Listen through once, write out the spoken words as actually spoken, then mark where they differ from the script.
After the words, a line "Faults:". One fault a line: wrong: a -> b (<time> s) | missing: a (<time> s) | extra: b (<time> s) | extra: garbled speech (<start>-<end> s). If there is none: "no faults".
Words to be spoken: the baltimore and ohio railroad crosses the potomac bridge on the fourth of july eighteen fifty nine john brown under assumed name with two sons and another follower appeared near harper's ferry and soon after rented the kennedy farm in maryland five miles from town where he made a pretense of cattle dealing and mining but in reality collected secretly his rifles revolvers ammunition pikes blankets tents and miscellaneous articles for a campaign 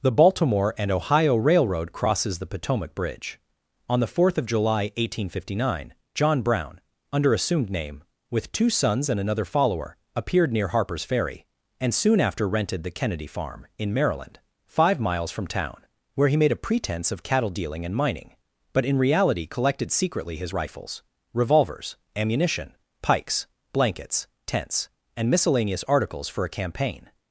the baltimore and ohio railroad crosses the potomac bridge on the fourth of july eighteen fifty nine john brown under assumed name with two sons and another follower appeared near harper's ferry and soon after rented the kennedy farm in maryland five miles from town where he made a pretense of cattle dealing and mining but in reality collected secretly his rifles revolvers ammunition pikes blankets tents and miscellaneous articles for a campaign
Faults:
no faults